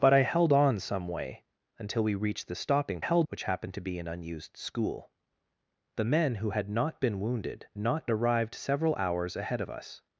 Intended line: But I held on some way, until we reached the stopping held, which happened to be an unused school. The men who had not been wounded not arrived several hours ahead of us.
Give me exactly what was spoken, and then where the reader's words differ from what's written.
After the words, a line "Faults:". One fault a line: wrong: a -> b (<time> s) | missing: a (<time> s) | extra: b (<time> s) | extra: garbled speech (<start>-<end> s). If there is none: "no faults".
But I held on some way, until we reached the stopping held, which happened to be an unused school. The men who had not been wounded not arrived several hours ahead of us.
Faults:
no faults